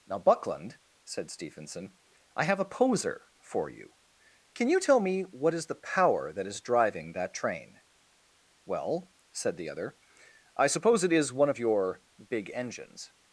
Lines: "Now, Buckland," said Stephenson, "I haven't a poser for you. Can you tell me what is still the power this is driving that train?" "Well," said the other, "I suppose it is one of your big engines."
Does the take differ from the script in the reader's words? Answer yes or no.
yes